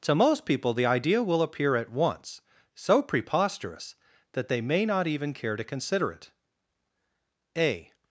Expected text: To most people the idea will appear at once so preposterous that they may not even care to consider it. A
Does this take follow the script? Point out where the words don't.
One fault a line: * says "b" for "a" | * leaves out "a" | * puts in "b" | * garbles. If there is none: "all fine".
all fine